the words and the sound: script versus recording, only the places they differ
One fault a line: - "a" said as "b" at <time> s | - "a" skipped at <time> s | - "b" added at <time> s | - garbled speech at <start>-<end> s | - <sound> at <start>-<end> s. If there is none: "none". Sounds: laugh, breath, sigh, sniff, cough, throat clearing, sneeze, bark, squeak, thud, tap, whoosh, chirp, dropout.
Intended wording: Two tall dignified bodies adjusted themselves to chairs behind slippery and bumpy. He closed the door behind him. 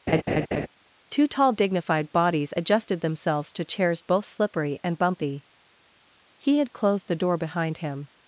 - laugh at 0.1-0.7 s
- "behind" said as "both" at 4.0 s
- "had" added at 6.6 s